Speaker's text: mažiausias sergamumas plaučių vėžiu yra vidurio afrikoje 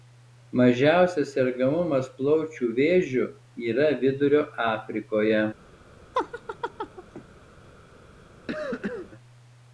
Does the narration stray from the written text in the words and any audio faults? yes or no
yes